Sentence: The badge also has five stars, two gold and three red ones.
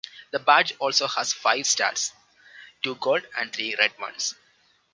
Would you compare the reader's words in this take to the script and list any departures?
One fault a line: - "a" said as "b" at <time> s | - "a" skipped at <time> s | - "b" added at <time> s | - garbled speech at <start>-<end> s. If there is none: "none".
none